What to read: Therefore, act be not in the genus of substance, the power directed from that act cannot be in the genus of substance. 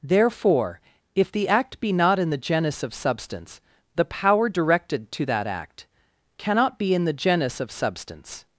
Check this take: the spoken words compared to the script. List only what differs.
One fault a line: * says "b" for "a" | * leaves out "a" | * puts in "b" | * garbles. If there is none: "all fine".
* puts in "if the"
* says "to" for "from"